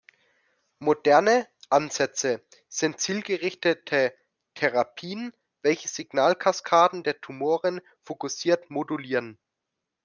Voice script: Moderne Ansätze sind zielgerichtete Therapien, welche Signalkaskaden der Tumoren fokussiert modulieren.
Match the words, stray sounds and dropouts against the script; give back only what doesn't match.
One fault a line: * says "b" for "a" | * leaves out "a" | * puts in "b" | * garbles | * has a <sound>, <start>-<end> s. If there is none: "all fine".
all fine